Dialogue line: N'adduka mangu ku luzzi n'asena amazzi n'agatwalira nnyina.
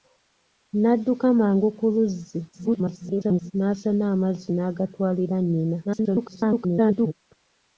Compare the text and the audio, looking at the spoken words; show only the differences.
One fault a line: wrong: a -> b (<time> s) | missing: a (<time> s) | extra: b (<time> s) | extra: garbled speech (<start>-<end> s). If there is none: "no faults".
extra: garbled speech (2.5-3.5 s)
extra: garbled speech (5.8-7.1 s)